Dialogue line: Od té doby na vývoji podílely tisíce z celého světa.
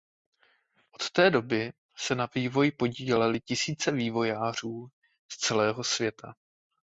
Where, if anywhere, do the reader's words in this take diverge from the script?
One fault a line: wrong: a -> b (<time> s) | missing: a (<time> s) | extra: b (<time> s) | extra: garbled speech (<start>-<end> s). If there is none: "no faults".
extra: se (2.0 s)
extra: vývojářů (3.9 s)